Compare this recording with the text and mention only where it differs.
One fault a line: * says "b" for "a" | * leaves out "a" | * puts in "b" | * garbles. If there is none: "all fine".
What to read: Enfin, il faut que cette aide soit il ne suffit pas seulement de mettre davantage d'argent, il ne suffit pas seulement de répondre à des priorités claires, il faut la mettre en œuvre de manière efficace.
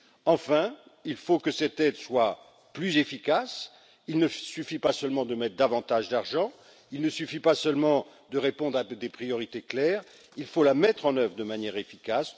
* puts in "plus efficace"